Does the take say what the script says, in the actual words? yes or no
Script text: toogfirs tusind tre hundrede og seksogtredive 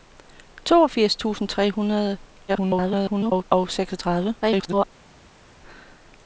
no